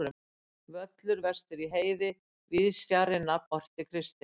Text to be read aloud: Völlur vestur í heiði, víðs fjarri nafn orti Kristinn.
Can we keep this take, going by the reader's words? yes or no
yes